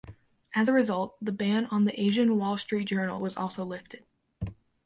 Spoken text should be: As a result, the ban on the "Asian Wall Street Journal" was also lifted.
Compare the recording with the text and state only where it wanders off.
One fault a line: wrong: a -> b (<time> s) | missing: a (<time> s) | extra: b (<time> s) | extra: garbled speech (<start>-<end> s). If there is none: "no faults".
no faults